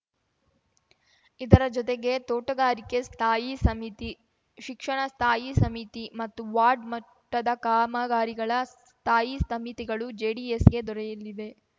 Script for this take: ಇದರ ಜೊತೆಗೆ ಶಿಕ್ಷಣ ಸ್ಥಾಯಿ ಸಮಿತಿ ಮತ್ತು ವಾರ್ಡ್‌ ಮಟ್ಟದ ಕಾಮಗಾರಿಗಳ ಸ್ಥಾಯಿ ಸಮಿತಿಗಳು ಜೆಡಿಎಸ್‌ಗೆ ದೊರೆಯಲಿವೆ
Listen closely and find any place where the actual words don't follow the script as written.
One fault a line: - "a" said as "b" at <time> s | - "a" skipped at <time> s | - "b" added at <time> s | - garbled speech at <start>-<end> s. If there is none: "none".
- "ತೋಟಗಾರಿಕೆ ಸ್ಥಾಯಿ ಸಮಿತಿ" added at 2.3 s